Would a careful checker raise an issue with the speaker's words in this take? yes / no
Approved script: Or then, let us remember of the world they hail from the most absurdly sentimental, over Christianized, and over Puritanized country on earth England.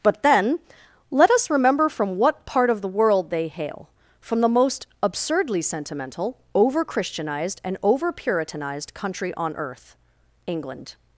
yes